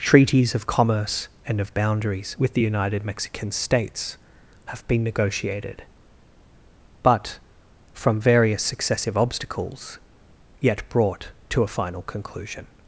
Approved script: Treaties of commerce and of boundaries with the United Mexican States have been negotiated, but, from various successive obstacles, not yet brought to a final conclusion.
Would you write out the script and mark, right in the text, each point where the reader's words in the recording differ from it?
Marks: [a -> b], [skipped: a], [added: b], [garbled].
Treaties of commerce and of boundaries with the United Mexican States have been negotiated, but, from various successive obstacles, [skipped: not] yet brought to a final conclusion.